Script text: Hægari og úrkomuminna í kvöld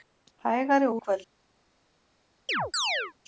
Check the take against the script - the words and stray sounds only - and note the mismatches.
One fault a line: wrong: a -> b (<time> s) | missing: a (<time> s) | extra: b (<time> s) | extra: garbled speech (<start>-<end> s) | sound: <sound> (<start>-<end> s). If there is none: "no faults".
missing: úrkomuminna (1.0 s)
sound: chirp (2.5-3.1 s)